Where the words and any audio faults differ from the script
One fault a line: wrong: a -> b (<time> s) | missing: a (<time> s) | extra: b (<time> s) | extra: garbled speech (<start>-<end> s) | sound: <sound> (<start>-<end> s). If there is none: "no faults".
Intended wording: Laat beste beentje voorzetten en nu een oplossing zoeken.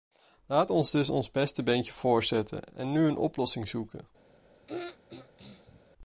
extra: ons dus ons (0.7 s)
sound: throat clearing (4.7-5.8 s)